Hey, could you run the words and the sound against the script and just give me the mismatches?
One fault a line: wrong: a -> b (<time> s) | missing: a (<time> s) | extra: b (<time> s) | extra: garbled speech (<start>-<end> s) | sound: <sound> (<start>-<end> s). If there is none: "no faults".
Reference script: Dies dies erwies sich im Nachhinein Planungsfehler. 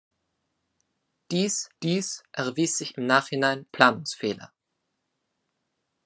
no faults